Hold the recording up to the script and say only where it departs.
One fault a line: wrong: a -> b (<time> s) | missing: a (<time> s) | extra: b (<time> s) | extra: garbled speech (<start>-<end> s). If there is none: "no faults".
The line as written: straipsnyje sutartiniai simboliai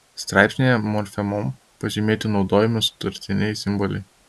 extra: morfemom pažymėti naudojami (0.9 s)